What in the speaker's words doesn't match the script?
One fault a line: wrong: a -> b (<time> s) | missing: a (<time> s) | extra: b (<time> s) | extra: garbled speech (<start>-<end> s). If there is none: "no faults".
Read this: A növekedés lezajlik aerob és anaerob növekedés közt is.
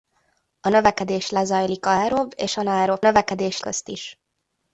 no faults